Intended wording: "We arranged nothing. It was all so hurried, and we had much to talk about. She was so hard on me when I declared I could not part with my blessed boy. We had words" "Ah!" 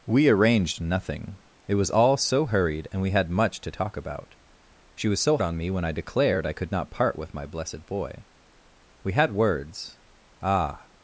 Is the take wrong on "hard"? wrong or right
wrong